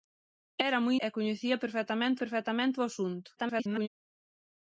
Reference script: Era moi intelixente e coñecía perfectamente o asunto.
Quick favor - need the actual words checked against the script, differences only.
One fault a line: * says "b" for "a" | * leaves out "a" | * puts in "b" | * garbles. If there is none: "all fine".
* leaves out "intelixente"
* puts in "perfectamente"
* garbles